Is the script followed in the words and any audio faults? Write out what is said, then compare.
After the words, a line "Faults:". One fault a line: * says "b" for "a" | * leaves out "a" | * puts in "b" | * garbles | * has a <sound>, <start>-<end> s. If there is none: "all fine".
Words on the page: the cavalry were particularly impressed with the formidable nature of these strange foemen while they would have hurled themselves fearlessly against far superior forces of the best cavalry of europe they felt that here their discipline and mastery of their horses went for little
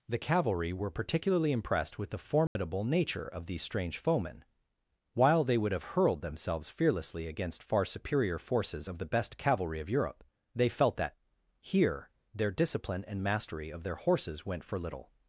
the cavalry were particularly impressed with the formidable nature of these strange foemen while they would have hurled themselves fearlessly against far superior forces of the best cavalry of europe they felt that here their discipline and mastery of their horses went for little
Faults:
* has a dropout, 2.5-2.6 s